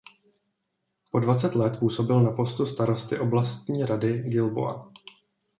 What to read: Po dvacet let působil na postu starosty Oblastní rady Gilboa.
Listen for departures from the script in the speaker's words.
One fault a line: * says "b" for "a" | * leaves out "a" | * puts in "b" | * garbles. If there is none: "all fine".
all fine